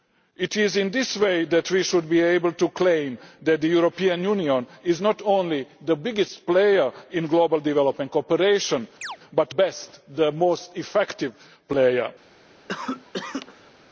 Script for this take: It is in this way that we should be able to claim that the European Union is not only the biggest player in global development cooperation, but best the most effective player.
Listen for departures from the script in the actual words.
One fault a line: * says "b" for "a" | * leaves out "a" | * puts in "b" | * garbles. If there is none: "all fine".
all fine